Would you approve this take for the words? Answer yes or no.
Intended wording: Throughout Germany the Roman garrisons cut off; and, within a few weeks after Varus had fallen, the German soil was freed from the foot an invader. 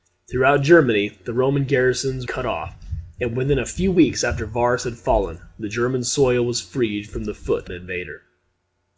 yes